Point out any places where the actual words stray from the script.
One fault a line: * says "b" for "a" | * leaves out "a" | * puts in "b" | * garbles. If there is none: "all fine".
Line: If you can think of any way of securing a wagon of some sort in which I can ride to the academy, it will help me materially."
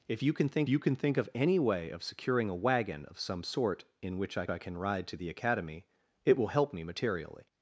* puts in "you can think"
* puts in "I"